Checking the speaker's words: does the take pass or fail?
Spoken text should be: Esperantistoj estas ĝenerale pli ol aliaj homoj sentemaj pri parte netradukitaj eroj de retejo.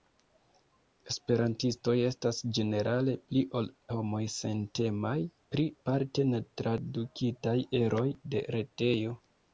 fail